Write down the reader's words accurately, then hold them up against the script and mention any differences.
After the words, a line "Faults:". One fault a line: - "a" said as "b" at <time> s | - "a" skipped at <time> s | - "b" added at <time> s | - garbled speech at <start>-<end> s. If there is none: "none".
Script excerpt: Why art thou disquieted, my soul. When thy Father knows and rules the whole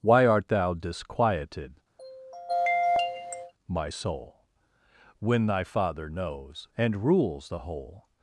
Why art thou disquieted, my soul. When thy Father knows and rules the whole
Faults:
none